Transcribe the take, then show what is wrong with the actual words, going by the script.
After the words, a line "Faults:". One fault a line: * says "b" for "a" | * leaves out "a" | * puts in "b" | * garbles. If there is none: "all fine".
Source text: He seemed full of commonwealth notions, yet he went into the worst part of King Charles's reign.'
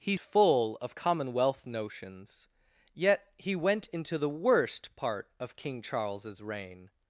He full of commonwealth notions, yet he went into the worst part of King Charles's reign.'
Faults:
* leaves out "seemed"